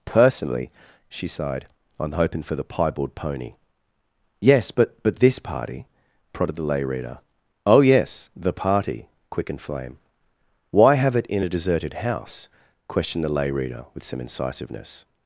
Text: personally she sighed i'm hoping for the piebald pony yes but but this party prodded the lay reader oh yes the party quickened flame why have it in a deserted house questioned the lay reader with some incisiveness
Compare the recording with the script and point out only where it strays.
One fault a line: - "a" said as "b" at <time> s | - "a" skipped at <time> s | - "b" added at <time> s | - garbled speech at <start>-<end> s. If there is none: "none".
none